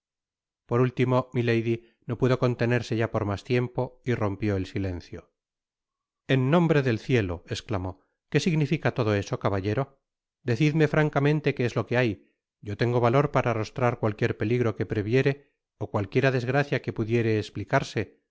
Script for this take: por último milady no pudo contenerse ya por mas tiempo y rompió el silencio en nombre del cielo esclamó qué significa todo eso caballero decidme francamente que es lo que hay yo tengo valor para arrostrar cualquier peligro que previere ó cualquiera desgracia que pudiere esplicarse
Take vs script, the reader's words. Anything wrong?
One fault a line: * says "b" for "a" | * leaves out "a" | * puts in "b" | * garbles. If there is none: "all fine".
all fine